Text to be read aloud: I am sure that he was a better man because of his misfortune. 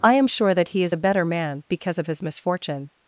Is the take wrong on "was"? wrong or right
wrong